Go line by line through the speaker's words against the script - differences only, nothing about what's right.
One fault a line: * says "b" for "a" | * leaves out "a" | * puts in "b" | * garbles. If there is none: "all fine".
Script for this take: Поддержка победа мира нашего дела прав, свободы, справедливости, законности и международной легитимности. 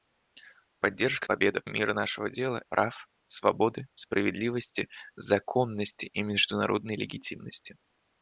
all fine